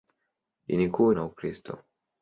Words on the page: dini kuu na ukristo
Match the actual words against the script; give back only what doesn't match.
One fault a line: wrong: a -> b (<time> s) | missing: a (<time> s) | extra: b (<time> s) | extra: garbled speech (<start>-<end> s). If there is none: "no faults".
no faults